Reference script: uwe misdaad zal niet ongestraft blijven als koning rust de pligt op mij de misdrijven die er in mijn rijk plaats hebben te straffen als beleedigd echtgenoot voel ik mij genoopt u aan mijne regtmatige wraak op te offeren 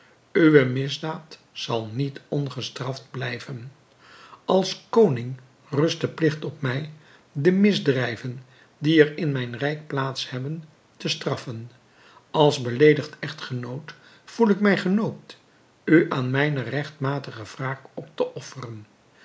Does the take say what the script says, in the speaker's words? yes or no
yes